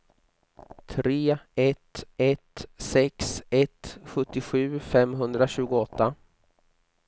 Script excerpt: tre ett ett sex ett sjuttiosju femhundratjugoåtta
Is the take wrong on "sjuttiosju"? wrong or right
right